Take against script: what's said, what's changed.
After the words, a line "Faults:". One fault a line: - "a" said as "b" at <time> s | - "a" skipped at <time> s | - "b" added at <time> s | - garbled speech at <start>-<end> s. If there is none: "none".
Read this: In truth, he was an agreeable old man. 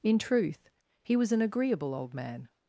In truth, he was an agreeable old man.
Faults:
none